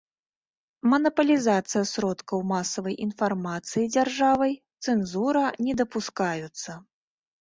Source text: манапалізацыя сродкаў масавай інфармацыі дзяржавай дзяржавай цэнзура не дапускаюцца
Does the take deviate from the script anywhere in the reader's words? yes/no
yes